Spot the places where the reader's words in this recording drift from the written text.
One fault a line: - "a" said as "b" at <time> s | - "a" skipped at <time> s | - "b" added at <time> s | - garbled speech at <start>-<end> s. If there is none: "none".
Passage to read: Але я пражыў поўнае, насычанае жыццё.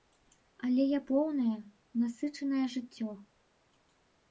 - "пражыў" skipped at 1.0 s